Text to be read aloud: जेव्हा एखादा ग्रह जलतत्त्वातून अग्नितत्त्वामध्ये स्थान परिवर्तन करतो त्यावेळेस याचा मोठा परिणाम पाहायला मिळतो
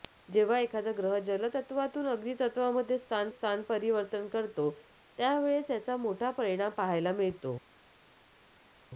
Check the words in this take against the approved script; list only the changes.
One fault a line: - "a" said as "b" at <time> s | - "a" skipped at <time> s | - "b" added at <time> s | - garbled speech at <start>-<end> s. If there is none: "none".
- "स्थान" added at 3.3 s